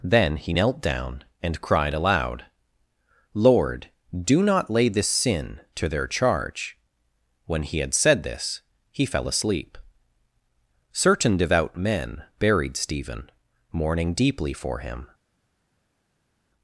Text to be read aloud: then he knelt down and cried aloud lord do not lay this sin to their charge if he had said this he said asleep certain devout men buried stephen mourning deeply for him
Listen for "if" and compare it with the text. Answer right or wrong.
wrong